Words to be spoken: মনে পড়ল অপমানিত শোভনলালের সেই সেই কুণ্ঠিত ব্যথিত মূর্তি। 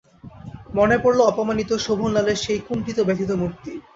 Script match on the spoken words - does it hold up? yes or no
no